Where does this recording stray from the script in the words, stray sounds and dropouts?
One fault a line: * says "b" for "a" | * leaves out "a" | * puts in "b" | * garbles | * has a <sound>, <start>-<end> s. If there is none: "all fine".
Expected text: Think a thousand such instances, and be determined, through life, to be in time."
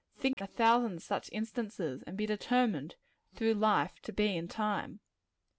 * has a dropout, 0.3-0.4 s